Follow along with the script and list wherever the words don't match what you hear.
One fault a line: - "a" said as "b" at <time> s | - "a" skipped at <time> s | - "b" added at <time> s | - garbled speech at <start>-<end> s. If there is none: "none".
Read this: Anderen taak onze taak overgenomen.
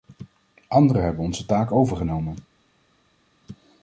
- "taak" said as "hebben" at 1.0 s